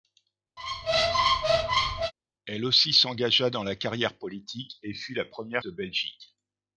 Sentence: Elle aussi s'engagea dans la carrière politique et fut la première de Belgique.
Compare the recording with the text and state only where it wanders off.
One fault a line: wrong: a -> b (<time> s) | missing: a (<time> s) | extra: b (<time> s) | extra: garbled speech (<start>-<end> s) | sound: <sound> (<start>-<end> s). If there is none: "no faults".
sound: squeak (0.6-2.1 s)